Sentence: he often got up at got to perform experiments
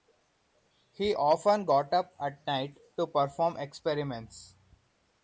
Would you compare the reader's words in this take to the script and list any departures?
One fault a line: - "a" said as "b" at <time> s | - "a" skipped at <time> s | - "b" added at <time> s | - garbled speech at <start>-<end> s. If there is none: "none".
- "got" said as "night" at 2.4 s